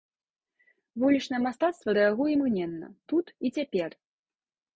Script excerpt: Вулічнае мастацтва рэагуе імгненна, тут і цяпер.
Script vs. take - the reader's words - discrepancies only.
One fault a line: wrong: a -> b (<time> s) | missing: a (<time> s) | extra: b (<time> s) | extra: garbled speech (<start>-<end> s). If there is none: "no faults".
no faults